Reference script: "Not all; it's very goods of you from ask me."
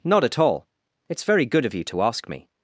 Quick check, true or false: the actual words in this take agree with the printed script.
false